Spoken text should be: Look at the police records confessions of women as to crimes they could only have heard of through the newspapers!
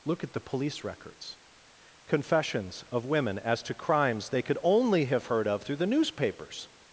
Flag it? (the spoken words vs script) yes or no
no